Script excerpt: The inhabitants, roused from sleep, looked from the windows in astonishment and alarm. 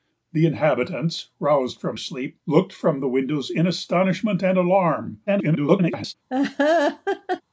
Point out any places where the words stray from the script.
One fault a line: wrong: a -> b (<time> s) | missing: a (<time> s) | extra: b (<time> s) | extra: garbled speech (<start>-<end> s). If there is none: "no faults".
extra: garbled speech (5.3-6.1 s)